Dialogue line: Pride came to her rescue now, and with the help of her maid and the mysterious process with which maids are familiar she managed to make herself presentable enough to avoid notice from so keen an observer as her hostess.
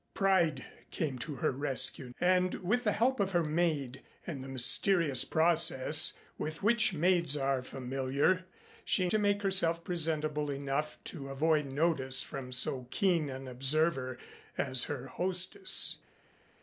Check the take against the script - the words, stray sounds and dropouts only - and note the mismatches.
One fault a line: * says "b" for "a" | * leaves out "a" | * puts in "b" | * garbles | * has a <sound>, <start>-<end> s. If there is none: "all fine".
* leaves out "now"
* leaves out "managed"